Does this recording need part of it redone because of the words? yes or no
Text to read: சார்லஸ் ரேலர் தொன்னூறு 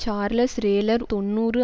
no